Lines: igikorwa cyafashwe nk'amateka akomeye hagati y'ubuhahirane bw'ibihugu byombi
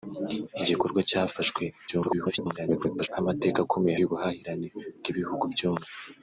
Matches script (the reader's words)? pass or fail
fail